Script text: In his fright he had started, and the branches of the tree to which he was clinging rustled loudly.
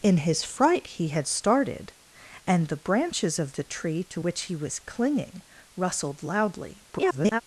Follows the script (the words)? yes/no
no